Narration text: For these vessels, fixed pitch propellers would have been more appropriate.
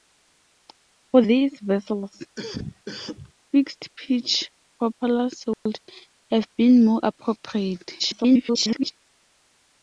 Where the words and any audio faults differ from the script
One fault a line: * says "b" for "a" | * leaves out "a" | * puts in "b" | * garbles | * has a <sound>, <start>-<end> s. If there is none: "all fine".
* has a cough, 2.4-3.3 s
* has a dropout, 5.5-5.7 s
* garbles